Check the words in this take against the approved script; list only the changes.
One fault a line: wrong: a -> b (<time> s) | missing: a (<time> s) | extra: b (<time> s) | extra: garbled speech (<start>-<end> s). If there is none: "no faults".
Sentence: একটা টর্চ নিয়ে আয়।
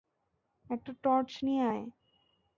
no faults